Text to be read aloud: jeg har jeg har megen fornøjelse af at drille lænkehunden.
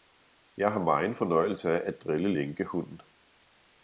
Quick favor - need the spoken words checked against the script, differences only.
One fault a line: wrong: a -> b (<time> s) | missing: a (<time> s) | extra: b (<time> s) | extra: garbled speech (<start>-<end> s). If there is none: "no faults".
missing: jeg har (0.8 s)